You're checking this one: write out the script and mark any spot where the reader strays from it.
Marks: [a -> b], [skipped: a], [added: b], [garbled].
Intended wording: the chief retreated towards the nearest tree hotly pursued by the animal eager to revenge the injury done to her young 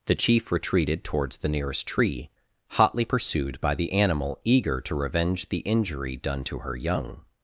the chief retreated towards the nearest tree hotly pursued by the animal eager to revenge the injury done to her young